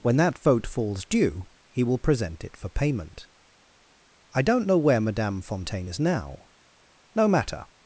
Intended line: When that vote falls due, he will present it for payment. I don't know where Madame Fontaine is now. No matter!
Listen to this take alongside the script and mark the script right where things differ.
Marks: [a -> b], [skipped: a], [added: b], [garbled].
When that vote falls due, he will present it for payment. I don't know where Madame Fontaine is now. No matter!